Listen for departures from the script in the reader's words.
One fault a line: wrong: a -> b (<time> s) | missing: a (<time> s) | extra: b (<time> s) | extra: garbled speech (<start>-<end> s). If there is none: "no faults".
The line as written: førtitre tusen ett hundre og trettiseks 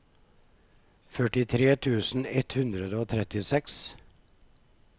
no faults